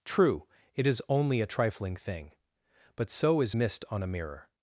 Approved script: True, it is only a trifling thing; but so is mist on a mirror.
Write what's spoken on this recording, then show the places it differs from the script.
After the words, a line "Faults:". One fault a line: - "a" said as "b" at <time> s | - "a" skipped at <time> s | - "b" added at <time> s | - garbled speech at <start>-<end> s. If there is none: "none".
True, it is only a trifling thing; but so is mist on a mirror.
Faults:
none